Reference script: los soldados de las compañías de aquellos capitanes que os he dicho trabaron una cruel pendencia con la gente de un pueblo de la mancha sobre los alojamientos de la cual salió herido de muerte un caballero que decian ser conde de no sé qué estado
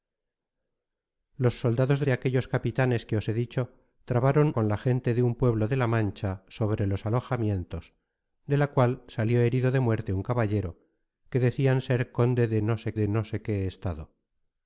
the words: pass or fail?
fail